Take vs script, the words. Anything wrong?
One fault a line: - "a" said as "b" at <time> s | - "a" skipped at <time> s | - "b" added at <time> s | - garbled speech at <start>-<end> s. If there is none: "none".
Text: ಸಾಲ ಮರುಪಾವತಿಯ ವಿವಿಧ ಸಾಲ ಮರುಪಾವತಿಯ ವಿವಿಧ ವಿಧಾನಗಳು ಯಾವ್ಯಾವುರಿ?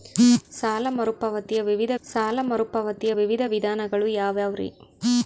none